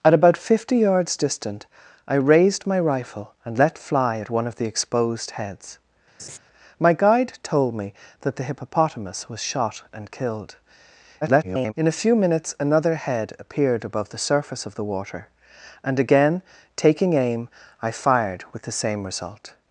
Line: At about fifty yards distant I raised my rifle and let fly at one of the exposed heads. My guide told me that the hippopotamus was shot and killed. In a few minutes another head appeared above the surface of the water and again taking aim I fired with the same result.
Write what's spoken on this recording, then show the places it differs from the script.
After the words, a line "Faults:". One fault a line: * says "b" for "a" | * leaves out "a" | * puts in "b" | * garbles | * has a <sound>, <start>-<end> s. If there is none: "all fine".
At about fifty yards distant I raised my rifle and let fly at one of the exposed heads. My guide told me that the hippopotamus was shot and killed. [garbled] In a few minutes another head appeared above the surface of the water and again taking aim I fired with the same result.
Faults:
* has a laugh, 6.2-6.4 s
* garbles